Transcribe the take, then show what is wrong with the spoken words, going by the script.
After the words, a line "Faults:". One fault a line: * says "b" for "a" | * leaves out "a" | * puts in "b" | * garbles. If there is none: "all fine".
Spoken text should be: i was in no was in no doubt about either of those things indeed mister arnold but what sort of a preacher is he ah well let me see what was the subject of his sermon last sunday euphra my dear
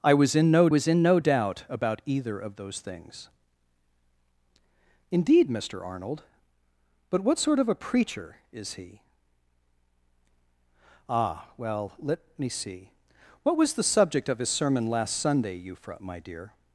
i was in no was in no doubt about either of those things indeed mister arnold but what sort of a preacher is he ah well let me see what was the subject of his sermon last sunday euphra my dear
Faults:
all fine